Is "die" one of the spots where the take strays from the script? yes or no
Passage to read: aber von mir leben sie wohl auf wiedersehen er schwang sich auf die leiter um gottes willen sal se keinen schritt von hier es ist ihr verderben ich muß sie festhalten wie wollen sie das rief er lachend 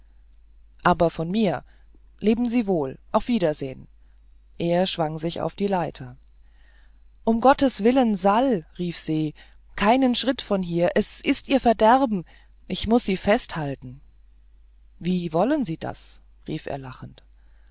no